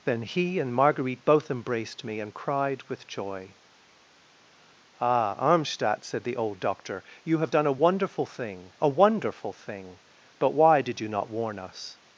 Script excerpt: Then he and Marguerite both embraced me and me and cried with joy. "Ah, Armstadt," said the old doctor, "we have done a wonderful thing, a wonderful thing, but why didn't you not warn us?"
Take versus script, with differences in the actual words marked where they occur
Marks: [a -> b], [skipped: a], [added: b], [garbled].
Then he and Marguerite both embraced me and [skipped: me and] cried with joy. "Ah, Armstadt," said the old doctor, ["we -> you] have done a wonderful thing, a wonderful thing, but why [didn't -> did] you not warn us?"